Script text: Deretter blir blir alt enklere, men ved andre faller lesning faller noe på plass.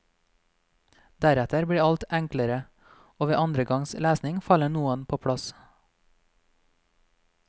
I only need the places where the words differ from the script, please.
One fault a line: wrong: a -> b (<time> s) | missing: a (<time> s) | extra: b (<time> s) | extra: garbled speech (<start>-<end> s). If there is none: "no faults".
missing: blir (1.8 s)
wrong: men -> og (3.2 s)
wrong: faller -> gangs (3.7 s)